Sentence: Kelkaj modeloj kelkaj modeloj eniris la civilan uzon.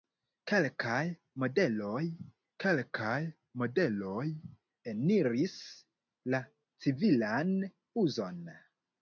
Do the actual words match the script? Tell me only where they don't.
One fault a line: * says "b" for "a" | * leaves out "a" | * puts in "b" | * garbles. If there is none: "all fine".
all fine